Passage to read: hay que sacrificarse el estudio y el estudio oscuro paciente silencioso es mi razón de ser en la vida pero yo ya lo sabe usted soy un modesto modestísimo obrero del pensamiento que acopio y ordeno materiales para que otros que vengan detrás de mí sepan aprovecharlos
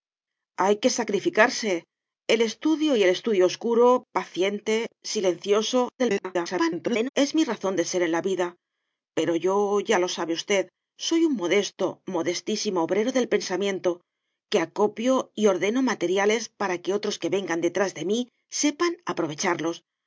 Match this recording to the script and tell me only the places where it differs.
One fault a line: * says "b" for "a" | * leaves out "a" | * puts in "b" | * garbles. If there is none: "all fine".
* garbles